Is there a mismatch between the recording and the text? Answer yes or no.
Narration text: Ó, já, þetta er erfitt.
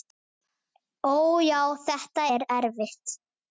no